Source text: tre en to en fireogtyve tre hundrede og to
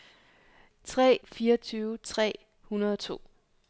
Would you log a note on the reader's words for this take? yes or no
yes